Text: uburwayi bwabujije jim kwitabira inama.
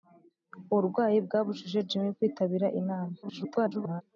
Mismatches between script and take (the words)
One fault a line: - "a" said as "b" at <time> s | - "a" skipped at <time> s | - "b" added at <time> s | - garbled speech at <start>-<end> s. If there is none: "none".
- garbled speech at 3.2-4.0 s